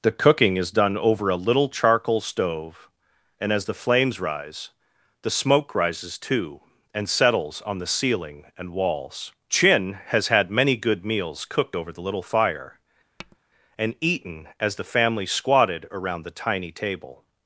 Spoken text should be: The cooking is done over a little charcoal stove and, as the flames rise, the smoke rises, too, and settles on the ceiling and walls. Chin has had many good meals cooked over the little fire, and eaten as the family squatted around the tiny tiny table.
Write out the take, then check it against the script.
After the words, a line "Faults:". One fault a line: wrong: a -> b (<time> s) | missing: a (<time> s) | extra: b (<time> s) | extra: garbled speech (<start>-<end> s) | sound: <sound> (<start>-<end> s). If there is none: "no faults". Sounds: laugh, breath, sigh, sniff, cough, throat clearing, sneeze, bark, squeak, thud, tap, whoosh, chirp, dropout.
The cooking is done over a little charcoal stove and, as the flames rise, the smoke rises, too, and settles on the ceiling and walls. Chin has had many good meals cooked over the little fire, and eaten as the family squatted around the tiny table.
Faults:
sound: tap (13.2-13.4 s)
missing: tiny (16.7 s)